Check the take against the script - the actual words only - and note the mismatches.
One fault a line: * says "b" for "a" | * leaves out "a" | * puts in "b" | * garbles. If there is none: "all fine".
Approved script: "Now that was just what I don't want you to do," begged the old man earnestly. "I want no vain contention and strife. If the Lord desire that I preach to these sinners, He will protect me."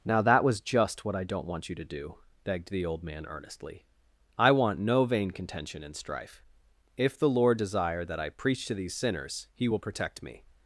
all fine